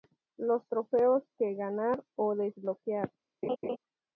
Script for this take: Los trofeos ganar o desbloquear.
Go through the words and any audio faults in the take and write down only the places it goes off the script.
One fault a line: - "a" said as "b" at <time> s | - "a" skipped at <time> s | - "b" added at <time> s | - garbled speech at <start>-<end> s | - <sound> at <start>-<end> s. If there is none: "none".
- "que" added at 1.4 s
- laugh at 3.4-3.8 s